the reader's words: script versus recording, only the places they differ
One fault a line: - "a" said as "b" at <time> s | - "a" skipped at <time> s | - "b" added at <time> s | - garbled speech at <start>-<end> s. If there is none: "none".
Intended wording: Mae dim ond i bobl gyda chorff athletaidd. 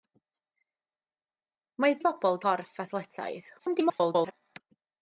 - "dim ond" skipped at 2.0 s
- "gyda" skipped at 2.4 s
- garbled speech at 3.6-4.3 s